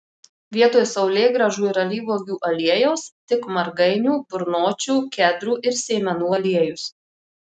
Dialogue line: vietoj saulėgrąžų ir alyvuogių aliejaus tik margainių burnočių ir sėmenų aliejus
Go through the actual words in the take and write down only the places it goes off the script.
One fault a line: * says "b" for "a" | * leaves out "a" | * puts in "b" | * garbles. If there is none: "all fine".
* puts in "kedrų"